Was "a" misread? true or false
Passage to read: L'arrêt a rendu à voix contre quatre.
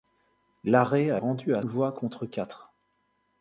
false